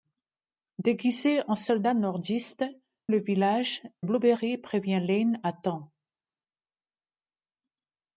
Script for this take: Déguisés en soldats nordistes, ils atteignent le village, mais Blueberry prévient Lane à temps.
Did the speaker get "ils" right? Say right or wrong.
wrong